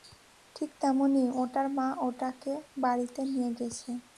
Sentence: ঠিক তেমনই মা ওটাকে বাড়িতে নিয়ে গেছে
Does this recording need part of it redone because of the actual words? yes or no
yes